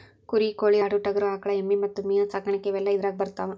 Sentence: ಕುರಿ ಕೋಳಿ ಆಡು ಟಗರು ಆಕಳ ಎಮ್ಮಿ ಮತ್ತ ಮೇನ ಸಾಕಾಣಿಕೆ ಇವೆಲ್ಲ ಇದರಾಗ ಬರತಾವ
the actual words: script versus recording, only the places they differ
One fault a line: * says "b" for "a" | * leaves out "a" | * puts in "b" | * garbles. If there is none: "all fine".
all fine